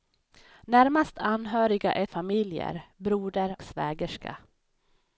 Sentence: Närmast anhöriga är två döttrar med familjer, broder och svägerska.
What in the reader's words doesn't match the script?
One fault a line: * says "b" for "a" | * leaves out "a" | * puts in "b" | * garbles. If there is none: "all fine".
* leaves out "två döttrar med"
* leaves out "och"